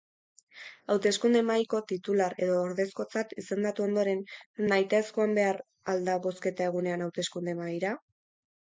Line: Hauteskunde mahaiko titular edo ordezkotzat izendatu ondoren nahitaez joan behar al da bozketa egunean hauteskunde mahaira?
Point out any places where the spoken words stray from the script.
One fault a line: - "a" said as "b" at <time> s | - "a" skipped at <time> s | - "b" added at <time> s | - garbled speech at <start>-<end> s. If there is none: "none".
none